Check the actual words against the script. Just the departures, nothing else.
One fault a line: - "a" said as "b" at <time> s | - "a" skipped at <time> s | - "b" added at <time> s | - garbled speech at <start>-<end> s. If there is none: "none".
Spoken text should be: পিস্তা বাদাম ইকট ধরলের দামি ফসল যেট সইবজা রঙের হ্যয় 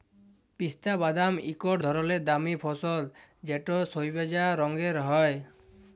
none